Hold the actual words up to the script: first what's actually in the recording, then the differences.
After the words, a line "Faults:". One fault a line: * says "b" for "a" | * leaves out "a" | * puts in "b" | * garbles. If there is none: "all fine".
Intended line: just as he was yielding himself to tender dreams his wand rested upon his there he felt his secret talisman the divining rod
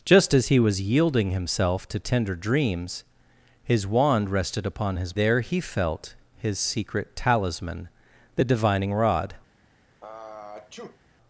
just as he was yielding himself to tender dreams his wand rested upon his there he felt his secret talisman the divining rod
Faults:
all fine